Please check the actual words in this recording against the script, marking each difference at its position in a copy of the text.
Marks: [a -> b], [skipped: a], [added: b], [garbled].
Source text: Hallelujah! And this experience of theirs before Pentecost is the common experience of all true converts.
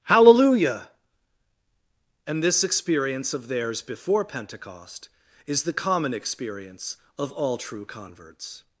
Hallelujah! And this experience of theirs before Pentecost is the common experience of all true converts.